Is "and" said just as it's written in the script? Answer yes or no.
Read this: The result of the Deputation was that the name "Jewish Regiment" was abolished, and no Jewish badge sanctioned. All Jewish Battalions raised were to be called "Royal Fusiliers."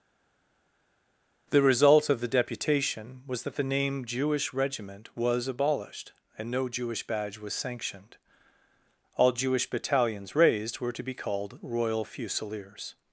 yes